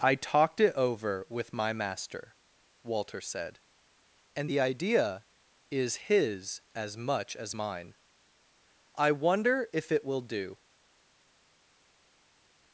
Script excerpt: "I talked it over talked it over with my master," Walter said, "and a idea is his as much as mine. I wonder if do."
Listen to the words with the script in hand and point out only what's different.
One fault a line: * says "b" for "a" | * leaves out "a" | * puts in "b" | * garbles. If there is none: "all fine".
* leaves out "talked it over"
* says "the" for "a"
* puts in "it will"